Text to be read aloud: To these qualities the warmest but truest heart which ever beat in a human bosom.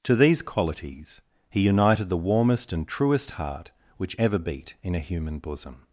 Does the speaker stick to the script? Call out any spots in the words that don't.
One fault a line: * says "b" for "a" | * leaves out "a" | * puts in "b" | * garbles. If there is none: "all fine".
* puts in "he united"
* says "and" for "but"